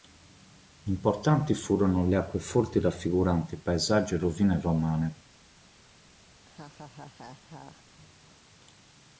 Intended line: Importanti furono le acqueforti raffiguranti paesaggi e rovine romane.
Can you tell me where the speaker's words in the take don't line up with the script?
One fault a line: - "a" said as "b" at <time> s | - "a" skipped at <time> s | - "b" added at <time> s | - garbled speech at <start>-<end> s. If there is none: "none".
none